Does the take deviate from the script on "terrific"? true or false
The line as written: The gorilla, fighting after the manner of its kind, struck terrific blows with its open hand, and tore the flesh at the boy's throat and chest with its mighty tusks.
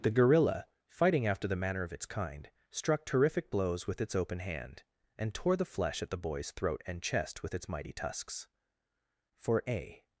false